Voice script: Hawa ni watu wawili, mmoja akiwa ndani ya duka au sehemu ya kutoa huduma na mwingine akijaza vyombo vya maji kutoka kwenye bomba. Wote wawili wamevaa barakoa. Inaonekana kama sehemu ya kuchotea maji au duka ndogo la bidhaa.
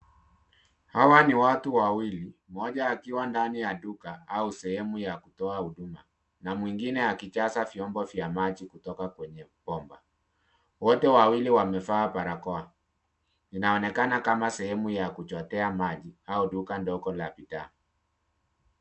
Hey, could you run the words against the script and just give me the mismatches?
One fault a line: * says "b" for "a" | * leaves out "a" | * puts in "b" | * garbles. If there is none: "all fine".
all fine